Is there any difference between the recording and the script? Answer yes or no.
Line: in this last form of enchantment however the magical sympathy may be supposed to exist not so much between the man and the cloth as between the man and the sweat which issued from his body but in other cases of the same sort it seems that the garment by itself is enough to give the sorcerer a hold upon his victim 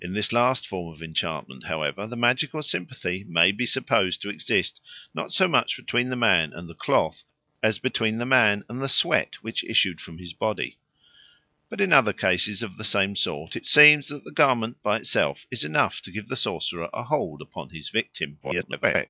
yes